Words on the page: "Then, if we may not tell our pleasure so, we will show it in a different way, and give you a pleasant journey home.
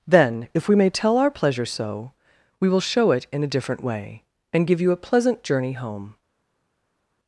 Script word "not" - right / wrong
wrong